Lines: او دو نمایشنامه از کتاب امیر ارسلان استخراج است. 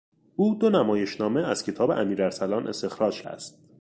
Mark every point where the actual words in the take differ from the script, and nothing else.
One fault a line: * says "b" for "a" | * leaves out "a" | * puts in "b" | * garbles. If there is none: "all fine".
all fine